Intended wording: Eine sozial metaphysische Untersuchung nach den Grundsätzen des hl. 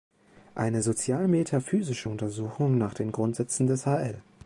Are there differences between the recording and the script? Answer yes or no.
no